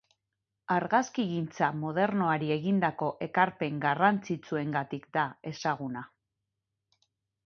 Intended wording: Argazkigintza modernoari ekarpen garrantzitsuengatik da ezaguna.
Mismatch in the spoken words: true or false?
true